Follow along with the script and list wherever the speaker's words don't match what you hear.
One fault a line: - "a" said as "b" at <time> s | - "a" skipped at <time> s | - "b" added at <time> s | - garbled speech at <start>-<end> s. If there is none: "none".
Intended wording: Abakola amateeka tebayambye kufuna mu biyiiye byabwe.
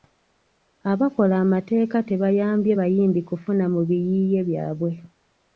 - "bayimbi" added at 2.8 s